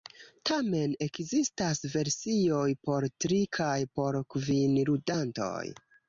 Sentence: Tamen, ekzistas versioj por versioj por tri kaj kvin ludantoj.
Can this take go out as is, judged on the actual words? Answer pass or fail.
fail